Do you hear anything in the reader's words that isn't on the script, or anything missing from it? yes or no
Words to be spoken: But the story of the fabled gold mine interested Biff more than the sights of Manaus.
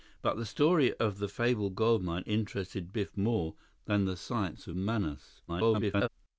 yes